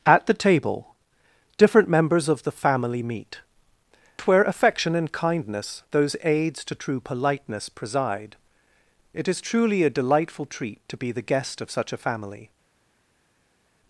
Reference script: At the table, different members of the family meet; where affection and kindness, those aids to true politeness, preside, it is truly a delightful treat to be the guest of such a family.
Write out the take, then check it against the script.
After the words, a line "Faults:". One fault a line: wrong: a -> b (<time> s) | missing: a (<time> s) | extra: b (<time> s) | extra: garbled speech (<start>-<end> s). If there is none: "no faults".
At the table, different members of the family meet; where affection and kindness, those aids to true politeness, preside, it is truly a delightful treat to be the guest of such a family.
Faults:
no faults